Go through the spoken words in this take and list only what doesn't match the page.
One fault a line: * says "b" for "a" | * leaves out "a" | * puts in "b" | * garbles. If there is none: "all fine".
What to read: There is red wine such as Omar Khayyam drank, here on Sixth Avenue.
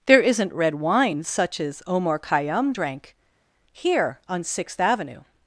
* says "isn't" for "is"